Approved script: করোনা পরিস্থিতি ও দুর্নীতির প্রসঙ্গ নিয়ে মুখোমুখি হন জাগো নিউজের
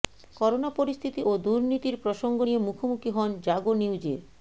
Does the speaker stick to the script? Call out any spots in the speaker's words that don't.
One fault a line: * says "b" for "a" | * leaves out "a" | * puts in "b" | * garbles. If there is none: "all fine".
all fine